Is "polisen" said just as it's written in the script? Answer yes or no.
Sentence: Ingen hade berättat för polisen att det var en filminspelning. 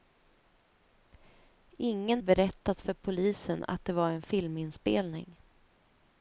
yes